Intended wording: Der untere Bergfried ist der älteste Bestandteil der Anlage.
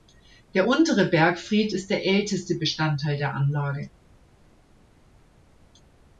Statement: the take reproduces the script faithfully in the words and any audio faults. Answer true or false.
true